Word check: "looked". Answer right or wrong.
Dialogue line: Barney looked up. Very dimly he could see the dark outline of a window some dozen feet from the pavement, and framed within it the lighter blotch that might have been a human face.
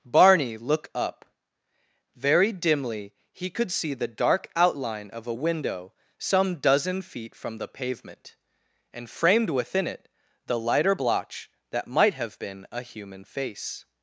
wrong